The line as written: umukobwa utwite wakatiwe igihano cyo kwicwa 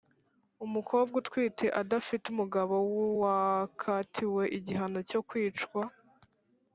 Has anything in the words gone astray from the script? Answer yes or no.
yes